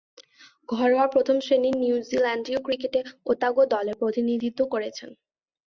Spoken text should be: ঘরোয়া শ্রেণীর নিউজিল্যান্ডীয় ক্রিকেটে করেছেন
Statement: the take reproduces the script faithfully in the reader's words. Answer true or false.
false